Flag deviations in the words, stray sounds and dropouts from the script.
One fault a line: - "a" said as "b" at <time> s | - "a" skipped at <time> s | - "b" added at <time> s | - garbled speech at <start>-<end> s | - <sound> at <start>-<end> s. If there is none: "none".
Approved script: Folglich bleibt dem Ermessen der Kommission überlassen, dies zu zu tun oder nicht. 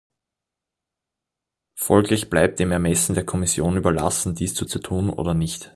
none